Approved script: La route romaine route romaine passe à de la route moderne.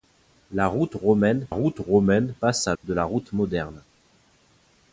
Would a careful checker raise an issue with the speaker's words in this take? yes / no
no